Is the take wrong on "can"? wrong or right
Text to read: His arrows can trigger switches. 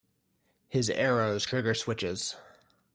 wrong